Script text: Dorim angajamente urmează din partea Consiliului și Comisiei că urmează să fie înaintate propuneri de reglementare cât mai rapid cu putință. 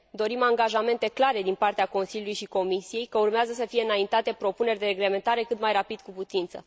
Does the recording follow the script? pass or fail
fail